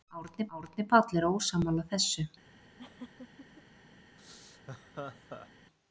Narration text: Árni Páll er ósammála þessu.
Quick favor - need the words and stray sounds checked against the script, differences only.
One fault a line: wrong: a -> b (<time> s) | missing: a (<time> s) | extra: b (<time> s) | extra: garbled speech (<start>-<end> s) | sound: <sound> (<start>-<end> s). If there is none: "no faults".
extra: árni (0.6 s)
sound: laugh (2.8-3.6 s)
sound: laugh (4.2-5.5 s)